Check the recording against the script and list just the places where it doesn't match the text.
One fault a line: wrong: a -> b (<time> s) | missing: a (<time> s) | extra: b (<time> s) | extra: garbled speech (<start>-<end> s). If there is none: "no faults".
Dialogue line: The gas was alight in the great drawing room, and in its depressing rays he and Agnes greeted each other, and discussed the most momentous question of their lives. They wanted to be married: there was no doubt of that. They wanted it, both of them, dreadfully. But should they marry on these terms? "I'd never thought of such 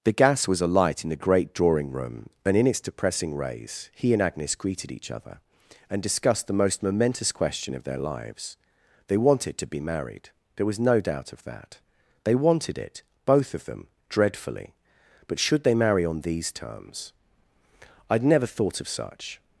no faults